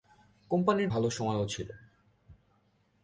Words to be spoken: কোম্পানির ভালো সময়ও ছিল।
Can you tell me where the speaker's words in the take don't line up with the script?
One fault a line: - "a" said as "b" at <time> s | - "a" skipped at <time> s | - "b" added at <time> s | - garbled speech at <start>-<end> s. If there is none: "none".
none